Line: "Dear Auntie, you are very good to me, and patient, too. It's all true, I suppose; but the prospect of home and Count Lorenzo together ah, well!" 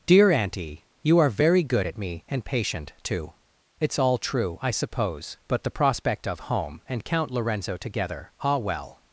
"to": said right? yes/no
no